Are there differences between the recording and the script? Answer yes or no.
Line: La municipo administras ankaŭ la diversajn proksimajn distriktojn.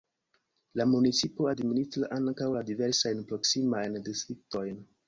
no